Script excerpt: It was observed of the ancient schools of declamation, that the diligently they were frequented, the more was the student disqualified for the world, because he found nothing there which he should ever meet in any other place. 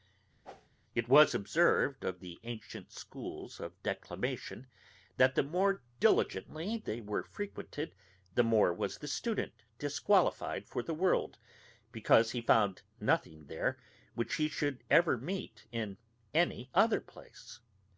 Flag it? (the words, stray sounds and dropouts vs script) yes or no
yes